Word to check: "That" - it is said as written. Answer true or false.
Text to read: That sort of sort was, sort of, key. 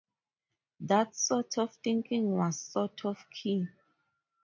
true